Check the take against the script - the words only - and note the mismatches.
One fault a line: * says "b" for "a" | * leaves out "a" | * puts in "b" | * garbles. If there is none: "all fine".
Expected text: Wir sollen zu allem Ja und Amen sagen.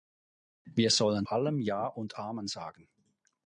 * leaves out "zu"